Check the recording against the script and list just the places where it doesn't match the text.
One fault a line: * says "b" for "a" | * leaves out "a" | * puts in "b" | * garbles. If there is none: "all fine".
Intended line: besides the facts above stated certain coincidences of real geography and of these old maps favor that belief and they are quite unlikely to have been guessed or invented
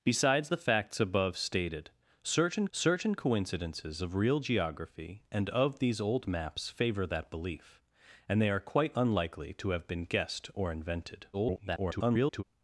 * puts in "certain"
* garbles